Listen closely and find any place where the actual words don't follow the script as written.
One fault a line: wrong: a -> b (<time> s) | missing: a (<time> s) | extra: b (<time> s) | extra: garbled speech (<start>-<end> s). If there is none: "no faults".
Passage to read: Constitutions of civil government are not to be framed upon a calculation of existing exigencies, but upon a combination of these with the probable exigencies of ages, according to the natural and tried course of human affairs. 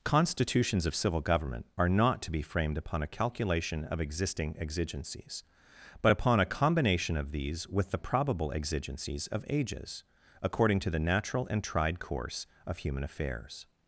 no faults